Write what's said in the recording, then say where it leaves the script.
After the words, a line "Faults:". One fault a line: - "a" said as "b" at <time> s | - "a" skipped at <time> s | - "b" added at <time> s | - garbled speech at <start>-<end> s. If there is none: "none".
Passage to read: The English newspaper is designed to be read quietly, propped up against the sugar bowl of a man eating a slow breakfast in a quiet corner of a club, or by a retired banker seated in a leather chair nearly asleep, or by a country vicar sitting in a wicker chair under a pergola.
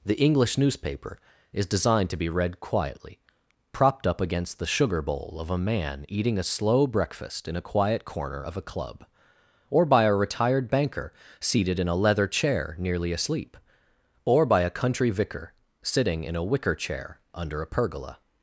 The English newspaper is designed to be read quietly, propped up against the sugar bowl of a man eating a slow breakfast in a quiet corner of a club, or by a retired banker seated in a leather chair nearly asleep, or by a country vicar sitting in a wicker chair under a pergola.
Faults:
none